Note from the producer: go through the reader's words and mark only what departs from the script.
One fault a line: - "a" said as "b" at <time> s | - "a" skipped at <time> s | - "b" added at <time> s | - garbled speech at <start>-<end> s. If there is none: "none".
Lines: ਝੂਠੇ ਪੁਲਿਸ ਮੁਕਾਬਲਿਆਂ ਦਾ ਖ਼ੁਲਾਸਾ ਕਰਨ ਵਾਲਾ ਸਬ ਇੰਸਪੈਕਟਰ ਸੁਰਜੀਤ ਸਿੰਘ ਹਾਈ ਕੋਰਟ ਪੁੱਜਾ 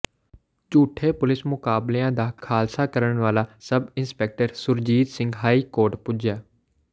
none